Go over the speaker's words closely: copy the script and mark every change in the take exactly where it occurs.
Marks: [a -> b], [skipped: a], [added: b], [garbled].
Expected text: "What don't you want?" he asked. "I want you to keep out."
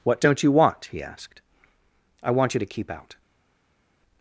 "What don't you want?" he asked. "I want you to keep out."